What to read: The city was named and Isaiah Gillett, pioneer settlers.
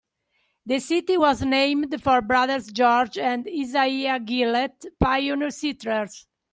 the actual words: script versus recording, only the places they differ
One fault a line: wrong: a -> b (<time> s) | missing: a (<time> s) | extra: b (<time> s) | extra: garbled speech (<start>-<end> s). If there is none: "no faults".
extra: for brothers George (2.0 s)